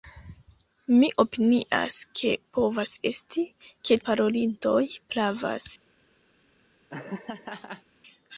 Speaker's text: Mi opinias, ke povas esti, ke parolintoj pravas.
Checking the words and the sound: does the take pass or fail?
fail